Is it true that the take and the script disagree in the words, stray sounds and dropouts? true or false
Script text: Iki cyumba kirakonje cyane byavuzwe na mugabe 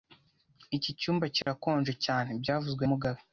true